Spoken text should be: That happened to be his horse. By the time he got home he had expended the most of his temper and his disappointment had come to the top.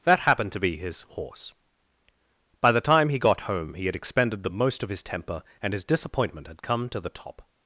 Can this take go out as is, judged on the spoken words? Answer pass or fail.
pass